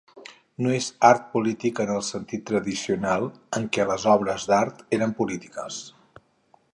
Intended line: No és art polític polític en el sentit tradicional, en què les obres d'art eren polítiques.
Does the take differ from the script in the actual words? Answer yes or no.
yes